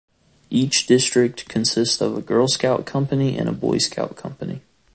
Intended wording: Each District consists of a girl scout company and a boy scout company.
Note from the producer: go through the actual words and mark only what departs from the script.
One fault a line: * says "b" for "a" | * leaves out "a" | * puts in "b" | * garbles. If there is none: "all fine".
all fine